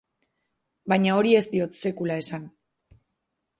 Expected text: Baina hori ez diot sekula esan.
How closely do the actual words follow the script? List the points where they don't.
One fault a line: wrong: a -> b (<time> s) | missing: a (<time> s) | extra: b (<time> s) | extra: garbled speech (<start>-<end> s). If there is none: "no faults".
no faults